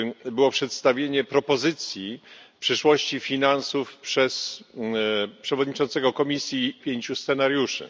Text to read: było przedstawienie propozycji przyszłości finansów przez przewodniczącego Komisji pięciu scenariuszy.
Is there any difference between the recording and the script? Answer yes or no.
no